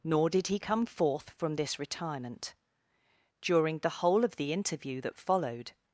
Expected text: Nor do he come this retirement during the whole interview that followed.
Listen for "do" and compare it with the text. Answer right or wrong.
wrong